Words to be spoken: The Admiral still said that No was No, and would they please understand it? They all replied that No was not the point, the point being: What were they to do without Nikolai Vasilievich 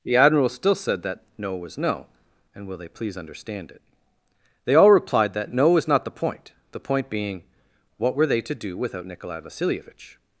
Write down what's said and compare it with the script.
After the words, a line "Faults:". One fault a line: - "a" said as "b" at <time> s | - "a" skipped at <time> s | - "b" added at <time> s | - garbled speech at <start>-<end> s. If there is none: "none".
The Admiral still said that No was No, and will they please understand it? They all replied that No was not the point, the point being: What were they to do without Nikolai Vasilievich
Faults:
- "would" said as "will" at 2.7 s